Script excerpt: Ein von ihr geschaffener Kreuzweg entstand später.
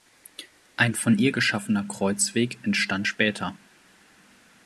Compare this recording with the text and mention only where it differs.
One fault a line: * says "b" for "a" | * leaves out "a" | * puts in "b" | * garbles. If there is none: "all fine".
all fine